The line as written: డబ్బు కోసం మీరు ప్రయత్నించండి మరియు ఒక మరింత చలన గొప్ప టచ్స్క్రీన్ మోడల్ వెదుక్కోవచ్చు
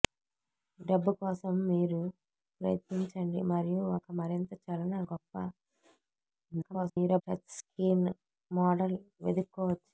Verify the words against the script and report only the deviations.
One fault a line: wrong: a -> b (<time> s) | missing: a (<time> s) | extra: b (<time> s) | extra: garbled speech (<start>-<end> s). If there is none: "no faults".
extra: garbled speech (6.5-7.2 s)